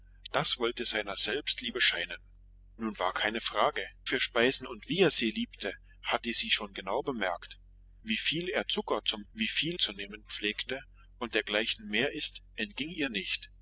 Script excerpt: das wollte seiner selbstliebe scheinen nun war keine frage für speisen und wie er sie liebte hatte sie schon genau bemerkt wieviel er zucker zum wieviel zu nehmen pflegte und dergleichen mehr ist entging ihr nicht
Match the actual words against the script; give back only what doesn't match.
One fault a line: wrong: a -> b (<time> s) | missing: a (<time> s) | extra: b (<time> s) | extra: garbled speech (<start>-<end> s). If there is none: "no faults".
no faults